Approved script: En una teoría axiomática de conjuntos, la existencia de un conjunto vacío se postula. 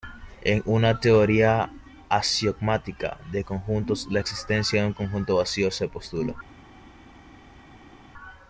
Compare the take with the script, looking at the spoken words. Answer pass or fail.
pass